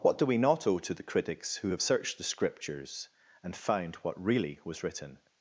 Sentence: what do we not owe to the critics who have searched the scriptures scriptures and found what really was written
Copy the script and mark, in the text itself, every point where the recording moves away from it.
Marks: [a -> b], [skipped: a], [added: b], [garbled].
what do we not owe to the critics who have searched the scriptures [skipped: scriptures] and found what really was written